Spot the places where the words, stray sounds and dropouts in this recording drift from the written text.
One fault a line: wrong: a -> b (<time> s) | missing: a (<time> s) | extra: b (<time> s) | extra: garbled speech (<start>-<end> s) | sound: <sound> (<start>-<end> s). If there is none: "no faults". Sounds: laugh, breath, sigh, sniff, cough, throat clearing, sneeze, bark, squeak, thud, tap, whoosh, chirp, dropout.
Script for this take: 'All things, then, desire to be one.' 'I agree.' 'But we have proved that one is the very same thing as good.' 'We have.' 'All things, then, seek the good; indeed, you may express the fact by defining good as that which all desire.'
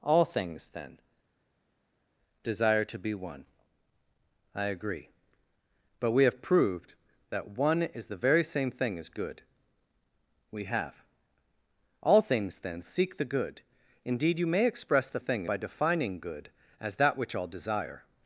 wrong: fact -> thing (15.2 s)